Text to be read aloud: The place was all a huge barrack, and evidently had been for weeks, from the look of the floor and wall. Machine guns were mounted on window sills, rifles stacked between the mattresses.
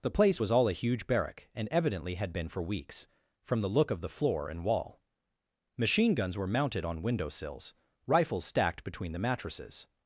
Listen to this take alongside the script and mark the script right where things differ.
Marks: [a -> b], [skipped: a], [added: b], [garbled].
The place was all a huge barrack, and evidently had been for weeks, from the look of the floor and wall. Machine guns were mounted on window sills, rifles stacked between the mattresses.